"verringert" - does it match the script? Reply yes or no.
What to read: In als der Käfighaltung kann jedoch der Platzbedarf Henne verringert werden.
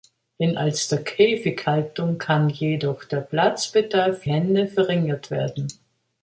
yes